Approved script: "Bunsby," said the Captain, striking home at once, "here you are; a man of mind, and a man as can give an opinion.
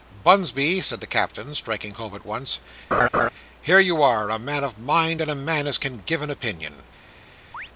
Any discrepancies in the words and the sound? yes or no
yes